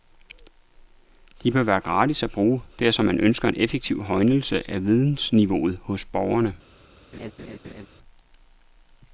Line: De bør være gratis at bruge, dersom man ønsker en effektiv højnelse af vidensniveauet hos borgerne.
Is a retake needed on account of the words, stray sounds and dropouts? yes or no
yes